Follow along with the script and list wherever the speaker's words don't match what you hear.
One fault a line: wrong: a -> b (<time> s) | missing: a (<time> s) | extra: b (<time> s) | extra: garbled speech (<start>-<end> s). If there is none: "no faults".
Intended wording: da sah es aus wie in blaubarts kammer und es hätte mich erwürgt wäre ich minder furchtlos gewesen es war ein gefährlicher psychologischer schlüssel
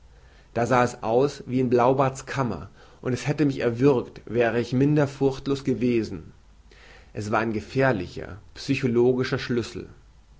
no faults